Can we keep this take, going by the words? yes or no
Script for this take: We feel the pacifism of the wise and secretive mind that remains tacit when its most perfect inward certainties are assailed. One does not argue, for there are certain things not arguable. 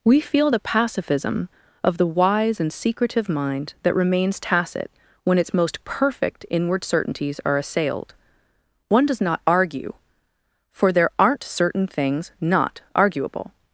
no